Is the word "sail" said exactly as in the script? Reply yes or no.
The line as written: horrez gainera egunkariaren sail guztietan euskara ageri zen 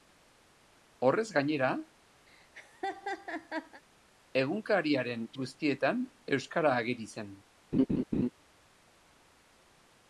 no